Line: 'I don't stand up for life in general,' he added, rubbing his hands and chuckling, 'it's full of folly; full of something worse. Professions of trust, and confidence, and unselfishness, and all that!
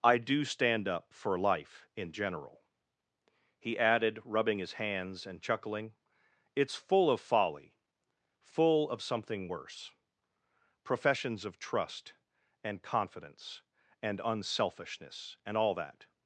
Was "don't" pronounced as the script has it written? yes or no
no